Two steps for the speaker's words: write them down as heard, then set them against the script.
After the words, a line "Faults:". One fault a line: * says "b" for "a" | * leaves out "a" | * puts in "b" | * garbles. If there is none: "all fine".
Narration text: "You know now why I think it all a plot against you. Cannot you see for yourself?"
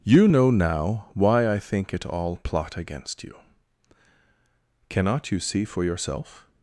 "You know now why I think it all plot against you. Cannot you see for yourself?"
Faults:
* leaves out "a"